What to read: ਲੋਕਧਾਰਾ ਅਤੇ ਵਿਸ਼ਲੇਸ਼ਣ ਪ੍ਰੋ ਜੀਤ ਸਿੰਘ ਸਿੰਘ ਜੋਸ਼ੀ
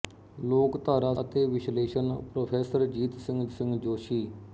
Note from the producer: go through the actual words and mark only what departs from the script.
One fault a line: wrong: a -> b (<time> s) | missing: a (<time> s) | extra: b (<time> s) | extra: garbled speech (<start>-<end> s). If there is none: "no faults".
no faults